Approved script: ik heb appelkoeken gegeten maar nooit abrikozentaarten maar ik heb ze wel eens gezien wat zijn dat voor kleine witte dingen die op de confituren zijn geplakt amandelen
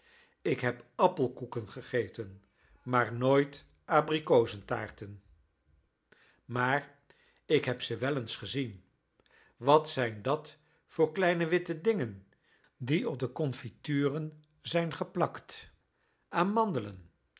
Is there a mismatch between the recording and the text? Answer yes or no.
no